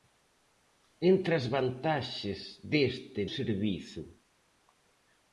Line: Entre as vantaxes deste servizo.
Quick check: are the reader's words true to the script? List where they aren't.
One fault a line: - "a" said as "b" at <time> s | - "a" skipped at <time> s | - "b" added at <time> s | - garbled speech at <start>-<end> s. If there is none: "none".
none